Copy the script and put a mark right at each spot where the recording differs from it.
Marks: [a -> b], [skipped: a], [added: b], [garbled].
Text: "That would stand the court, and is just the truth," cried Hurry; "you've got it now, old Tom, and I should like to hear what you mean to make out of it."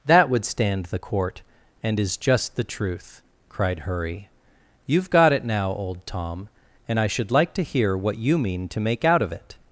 "That would stand the court, and is just the truth," cried Hurry; "you've got it now, old Tom, and I should like to hear what you mean to make out of it."